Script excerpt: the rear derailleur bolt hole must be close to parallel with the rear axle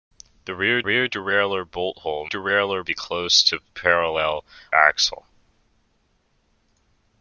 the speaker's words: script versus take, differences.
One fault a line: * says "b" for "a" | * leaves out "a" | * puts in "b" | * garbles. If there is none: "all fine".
* puts in "rear"
* says "derailleur" for "must"
* leaves out "with the rear"